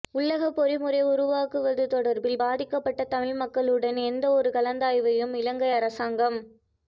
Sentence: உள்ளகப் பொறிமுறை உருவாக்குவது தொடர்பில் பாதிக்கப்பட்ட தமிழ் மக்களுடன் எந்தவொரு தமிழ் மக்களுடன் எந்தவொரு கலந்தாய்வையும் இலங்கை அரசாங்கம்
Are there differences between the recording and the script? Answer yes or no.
yes